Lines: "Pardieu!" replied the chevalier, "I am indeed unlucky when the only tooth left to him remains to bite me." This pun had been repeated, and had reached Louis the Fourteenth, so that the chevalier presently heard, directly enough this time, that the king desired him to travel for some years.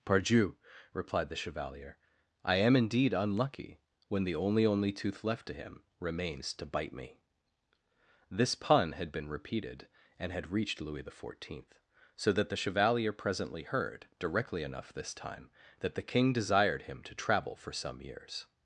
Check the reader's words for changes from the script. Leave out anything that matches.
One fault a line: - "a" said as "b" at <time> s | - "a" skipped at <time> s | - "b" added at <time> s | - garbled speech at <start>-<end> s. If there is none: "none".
- "only" added at 4.7 s